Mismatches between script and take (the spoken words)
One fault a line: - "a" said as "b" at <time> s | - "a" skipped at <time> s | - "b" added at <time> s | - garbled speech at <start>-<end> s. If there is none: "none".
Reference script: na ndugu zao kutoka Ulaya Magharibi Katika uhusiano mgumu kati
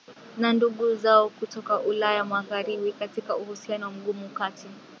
none